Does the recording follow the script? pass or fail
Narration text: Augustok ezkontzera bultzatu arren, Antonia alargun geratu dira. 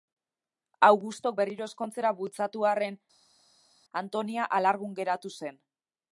fail